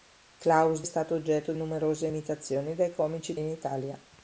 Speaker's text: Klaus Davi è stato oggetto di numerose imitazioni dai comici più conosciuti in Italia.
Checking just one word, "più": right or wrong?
wrong